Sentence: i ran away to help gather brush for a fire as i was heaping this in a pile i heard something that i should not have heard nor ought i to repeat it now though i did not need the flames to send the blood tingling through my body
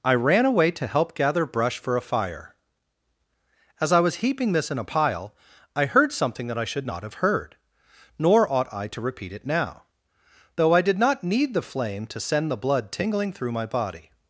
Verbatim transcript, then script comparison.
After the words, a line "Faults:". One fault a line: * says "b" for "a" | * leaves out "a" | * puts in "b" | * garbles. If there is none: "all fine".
i ran away to help gather brush for a fire as i was heaping this in a pile i heard something that i should not have heard nor ought i to repeat it now though i did not need the flame to send the blood tingling through my body
Faults:
* says "flame" for "flames"